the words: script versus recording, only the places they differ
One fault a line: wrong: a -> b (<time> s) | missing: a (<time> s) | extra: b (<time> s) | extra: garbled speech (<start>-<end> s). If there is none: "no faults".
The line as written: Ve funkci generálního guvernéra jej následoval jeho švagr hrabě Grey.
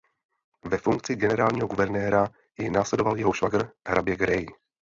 no faults